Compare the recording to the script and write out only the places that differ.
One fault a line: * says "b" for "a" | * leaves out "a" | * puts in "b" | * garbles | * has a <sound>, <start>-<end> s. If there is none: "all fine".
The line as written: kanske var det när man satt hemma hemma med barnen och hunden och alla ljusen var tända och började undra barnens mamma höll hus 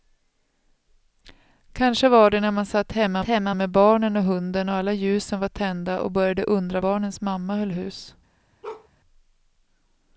* has a bark, 8.6-8.9 s